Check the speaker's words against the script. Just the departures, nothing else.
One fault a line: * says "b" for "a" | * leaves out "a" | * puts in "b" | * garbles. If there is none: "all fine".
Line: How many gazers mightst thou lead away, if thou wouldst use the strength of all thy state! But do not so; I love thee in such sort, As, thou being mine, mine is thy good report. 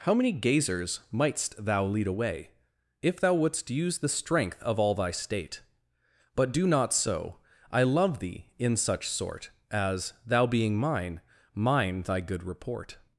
* leaves out "is"